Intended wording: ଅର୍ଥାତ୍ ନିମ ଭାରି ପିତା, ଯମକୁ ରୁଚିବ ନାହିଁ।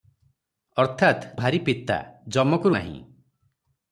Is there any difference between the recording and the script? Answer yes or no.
yes